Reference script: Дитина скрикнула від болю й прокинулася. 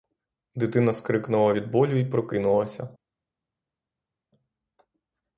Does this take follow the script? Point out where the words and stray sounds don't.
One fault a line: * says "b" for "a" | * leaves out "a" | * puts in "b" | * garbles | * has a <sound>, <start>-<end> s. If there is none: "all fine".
all fine